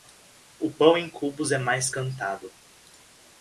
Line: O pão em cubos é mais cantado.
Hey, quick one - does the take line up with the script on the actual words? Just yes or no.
yes